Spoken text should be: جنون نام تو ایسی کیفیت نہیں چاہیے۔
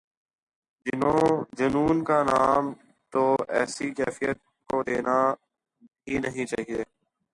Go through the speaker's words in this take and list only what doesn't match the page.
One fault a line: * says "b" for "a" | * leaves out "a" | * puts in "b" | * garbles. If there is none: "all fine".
* puts in "کا"
* puts in "کو دینا ہی"